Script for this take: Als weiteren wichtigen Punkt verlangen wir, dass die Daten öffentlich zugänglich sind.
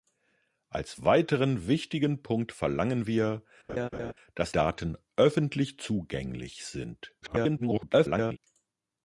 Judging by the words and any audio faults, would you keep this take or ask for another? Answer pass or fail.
fail